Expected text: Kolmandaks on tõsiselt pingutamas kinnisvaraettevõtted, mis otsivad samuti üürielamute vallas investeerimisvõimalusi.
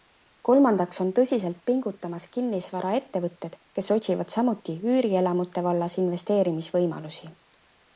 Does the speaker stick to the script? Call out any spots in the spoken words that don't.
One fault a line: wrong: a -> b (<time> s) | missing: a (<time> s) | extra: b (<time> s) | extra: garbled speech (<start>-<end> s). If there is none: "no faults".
wrong: mis -> kes (3.8 s)